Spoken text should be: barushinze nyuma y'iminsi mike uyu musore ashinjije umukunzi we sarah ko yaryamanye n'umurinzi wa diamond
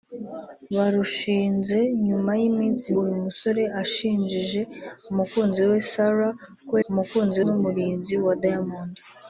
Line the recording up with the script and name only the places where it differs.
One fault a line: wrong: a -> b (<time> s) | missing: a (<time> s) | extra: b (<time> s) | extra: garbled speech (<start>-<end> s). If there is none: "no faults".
missing: mike (2.9 s)
wrong: yaryamanye -> umukunzi (6.9 s)